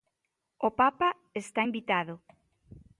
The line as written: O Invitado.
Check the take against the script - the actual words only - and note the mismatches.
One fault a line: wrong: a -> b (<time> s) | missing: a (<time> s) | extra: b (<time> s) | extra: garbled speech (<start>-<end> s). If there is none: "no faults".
extra: Papa está (0.7 s)